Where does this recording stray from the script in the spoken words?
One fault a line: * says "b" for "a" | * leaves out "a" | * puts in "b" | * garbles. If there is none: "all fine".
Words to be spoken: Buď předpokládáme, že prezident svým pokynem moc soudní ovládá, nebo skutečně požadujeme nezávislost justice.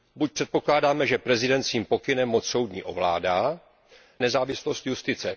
* leaves out "nebo skutečně požadujeme"